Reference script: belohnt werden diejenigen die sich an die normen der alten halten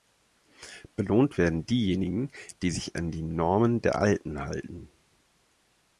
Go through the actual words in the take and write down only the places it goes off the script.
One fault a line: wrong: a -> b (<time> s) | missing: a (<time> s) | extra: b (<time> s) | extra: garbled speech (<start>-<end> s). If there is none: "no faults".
no faults